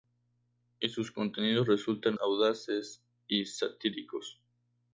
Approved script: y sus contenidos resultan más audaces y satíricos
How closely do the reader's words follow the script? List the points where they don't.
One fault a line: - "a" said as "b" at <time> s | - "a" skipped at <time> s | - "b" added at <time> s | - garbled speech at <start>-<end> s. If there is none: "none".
- "más" skipped at 2.2 s